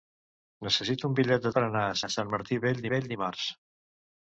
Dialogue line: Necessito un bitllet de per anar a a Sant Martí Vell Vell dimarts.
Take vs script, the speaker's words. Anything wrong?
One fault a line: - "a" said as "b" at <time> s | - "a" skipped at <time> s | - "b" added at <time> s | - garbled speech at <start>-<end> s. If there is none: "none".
none